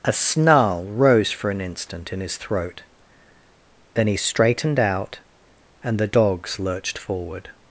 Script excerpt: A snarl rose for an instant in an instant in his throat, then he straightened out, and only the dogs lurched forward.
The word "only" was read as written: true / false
false